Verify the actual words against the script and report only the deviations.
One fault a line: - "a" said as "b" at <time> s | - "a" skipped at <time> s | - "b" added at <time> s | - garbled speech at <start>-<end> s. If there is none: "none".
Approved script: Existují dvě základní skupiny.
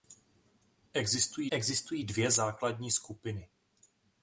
- "existují" added at 1.5 s